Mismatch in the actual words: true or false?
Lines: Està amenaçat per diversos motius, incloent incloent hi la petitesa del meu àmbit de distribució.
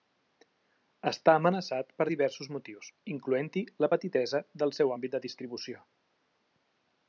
true